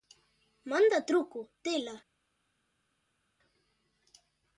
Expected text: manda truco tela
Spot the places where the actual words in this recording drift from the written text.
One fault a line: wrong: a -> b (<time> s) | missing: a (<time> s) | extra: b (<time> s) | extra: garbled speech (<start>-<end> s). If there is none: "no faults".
no faults